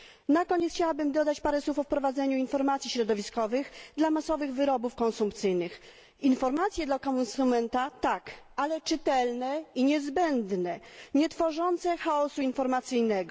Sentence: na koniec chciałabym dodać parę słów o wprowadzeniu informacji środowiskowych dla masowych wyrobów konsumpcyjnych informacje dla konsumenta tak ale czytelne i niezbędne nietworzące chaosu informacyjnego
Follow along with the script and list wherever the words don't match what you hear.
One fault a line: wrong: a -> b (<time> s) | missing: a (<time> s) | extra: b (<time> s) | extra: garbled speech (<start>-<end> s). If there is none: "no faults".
no faults